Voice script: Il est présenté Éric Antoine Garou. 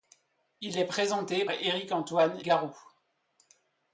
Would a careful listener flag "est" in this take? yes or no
no